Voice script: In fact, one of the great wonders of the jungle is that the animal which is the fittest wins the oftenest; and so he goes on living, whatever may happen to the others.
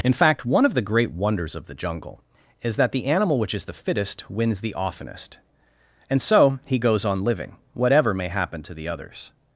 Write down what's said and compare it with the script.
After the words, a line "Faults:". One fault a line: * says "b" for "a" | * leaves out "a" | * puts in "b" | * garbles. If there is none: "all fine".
In fact, one of the great wonders of the jungle is that the animal which is the fittest wins the oftenest; and so he goes on living, whatever may happen to the others.
Faults:
all fine